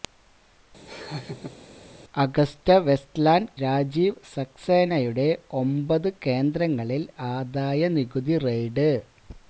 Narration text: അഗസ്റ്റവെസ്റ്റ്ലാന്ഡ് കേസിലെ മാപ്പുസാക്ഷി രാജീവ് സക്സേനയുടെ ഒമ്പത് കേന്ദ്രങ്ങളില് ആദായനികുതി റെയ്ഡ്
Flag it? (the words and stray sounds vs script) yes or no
yes